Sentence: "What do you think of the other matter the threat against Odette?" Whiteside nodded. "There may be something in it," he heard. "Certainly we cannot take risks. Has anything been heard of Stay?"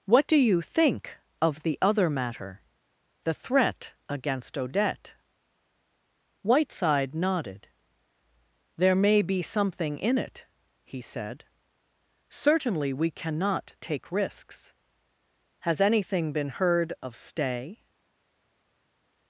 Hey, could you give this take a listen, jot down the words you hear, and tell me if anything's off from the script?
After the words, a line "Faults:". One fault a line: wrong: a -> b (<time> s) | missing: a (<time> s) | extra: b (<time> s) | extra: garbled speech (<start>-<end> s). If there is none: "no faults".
"What do you think of the other matter the threat against Odette?" Whiteside nodded. "There may be something in it," he said. "Certainly we cannot take risks. Has anything been heard of Stay?"
Faults:
wrong: heard -> said (11.0 s)